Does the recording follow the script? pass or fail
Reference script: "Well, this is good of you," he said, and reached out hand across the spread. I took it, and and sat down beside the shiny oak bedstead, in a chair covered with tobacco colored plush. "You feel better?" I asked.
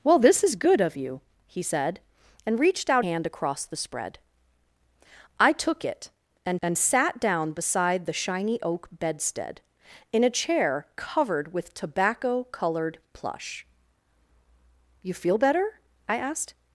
pass